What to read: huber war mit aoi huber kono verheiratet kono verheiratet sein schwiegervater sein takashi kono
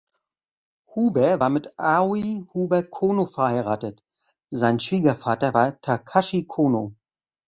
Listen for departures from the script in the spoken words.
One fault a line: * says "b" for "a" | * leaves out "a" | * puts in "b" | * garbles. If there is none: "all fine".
* leaves out "kono verheiratet"
* says "war" for "sein"